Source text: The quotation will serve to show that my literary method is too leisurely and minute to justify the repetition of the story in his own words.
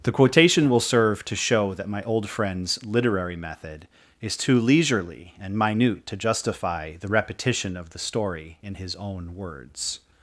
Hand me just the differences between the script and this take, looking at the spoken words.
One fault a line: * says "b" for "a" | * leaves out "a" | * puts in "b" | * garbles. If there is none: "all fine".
* puts in "old friend's"